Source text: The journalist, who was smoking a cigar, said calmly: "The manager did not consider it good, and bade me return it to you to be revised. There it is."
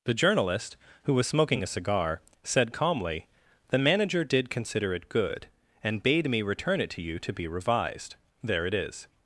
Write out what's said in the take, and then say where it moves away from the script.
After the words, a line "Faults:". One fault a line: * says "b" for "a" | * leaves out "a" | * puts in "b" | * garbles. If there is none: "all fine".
The journalist, who was smoking a cigar, said calmly: "The manager did consider it good, and bade me return it to you to be revised. There it is."
Faults:
* leaves out "not"